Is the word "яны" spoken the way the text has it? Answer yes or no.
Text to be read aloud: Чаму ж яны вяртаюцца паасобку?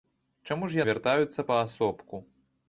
no